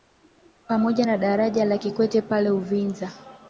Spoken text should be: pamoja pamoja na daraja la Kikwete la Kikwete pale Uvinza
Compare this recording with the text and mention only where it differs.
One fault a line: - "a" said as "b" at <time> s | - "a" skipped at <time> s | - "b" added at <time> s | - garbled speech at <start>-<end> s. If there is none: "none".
- "pamoja" skipped at 1.1 s
- "la Kikwete" skipped at 2.2 s